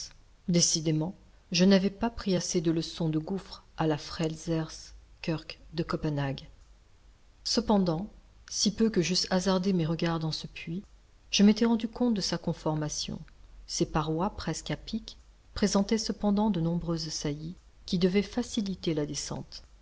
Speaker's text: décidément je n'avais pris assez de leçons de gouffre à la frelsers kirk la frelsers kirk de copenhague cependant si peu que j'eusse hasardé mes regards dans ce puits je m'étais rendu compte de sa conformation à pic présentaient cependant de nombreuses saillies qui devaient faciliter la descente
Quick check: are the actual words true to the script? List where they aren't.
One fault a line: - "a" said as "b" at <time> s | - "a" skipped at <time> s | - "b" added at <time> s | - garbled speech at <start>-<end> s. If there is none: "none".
- "pas" added at 1.9 s
- "la frelsers kirk" skipped at 5.6 s
- "ses parois presque" added at 13.7 s